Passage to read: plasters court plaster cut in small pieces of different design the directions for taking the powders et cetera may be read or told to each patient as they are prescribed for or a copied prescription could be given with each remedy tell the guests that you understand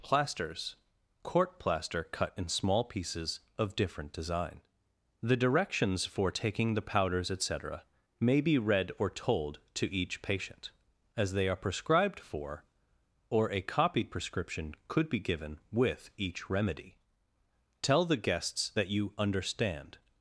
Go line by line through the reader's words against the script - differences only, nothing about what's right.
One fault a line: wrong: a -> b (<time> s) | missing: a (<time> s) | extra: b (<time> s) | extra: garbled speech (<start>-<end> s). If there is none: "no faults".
no faults